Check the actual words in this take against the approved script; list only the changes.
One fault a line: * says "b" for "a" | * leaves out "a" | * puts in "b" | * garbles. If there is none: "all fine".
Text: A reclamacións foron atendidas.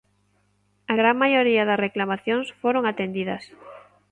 * puts in "gran maioría das"